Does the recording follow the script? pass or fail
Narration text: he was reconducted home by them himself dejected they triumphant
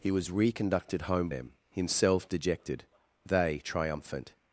fail